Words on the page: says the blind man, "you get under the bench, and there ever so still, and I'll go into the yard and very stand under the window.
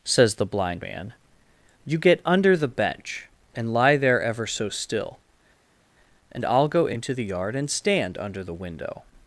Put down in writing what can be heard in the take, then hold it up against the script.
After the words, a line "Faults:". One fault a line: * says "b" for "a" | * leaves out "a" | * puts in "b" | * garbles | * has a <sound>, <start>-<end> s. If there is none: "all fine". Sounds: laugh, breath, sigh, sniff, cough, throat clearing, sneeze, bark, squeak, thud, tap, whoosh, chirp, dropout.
says the blind man, "you get under the bench, and lie there ever so still, and I'll go into the yard and stand under the window.
Faults:
* puts in "lie"
* leaves out "very"